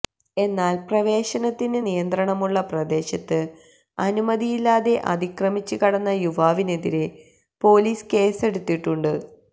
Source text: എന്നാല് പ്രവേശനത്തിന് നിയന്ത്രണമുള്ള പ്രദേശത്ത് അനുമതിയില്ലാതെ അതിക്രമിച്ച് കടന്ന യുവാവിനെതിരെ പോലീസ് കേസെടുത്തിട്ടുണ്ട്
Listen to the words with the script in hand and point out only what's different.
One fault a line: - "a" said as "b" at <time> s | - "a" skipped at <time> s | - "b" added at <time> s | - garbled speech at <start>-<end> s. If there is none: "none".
none